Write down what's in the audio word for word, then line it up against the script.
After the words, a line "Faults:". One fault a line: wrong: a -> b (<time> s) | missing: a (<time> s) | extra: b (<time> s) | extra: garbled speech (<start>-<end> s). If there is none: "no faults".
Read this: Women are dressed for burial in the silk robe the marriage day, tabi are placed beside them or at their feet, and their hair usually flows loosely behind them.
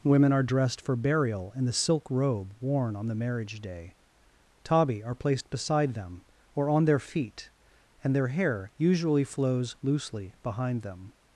Women are dressed for burial in the silk robe worn on the marriage day, tabi are placed beside them or on their feet, and their hair usually flows loosely behind them.
Faults:
extra: worn on (2.6 s)
wrong: at -> on (6.7 s)